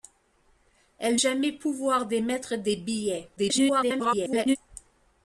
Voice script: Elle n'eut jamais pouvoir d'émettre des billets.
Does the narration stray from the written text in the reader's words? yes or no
yes